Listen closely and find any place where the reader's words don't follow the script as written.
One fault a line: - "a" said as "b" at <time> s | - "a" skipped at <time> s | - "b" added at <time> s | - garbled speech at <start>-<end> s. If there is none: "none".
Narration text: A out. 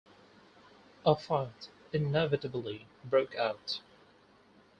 - "fight inevitably broke" added at 1.1 s